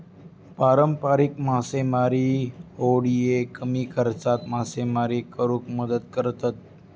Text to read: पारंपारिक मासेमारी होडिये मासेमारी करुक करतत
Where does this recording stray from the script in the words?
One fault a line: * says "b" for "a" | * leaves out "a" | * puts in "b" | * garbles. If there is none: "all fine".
* puts in "कमी खर्चात"
* puts in "मदत"